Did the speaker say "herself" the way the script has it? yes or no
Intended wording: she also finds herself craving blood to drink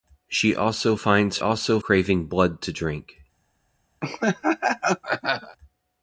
no